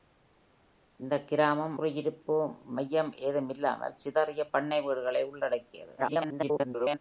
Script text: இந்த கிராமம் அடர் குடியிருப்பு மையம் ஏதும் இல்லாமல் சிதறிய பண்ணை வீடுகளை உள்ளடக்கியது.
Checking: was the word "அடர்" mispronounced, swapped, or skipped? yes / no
yes